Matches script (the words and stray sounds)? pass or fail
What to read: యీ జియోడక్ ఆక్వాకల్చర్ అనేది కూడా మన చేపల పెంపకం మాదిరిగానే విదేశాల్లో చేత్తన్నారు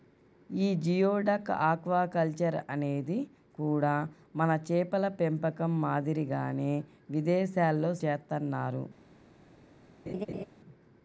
fail